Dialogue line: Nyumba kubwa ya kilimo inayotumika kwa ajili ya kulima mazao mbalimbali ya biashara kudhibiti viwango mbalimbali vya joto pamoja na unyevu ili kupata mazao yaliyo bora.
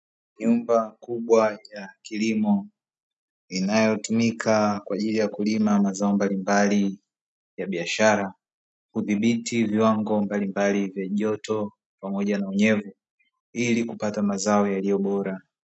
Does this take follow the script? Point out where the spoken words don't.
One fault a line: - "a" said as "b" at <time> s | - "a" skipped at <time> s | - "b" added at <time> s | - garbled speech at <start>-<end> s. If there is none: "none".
none